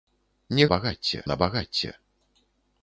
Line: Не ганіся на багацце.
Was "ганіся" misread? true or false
true